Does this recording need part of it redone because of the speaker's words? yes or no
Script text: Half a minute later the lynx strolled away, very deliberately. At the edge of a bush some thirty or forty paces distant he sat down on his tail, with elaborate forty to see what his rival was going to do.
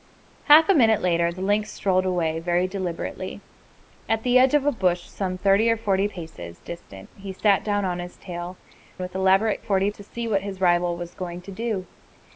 no